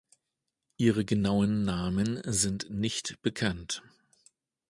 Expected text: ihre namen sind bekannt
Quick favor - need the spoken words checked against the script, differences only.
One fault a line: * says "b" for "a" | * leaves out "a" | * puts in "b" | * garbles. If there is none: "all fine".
* puts in "genauen"
* puts in "nicht"